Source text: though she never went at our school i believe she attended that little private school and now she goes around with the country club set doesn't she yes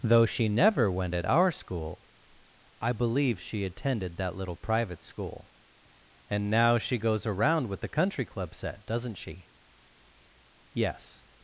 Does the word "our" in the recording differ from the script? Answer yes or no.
no